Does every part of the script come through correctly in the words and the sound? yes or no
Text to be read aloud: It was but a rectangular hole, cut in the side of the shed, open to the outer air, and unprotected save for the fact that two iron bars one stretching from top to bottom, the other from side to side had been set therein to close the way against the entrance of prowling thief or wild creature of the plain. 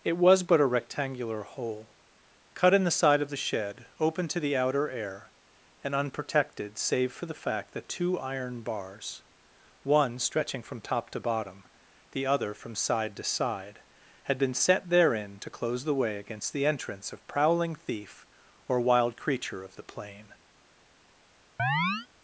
no